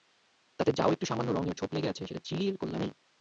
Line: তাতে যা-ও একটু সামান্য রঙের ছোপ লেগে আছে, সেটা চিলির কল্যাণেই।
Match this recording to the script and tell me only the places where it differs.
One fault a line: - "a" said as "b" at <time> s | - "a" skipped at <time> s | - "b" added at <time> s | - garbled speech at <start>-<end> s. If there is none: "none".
none